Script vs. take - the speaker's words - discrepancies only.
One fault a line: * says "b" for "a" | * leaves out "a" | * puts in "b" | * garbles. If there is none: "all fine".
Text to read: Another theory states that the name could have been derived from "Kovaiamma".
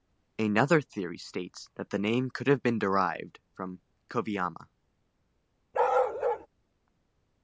all fine